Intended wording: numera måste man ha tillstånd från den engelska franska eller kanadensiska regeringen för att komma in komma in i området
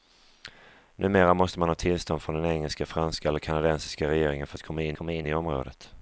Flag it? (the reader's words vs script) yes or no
no